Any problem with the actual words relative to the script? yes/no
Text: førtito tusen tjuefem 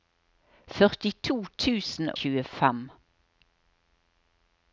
no